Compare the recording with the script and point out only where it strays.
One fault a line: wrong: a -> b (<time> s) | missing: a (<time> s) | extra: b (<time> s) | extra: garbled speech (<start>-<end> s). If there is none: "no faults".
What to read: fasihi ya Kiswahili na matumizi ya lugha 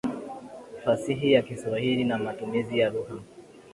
no faults